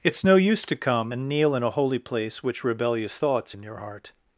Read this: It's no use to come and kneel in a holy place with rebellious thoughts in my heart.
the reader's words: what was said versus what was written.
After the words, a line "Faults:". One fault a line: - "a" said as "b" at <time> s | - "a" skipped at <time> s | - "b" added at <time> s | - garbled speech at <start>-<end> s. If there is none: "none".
It's no use to come and kneel in a holy place which rebellious thoughts in your heart.
Faults:
- "with" said as "which" at 2.4 s
- "my" said as "your" at 3.6 s